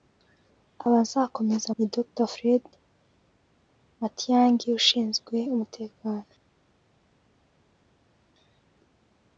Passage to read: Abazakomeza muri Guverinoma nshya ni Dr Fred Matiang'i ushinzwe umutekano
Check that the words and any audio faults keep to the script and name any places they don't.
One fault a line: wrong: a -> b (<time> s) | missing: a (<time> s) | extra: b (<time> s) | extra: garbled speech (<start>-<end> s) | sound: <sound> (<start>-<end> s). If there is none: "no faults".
missing: muri Guverinoma nshya (1.7 s)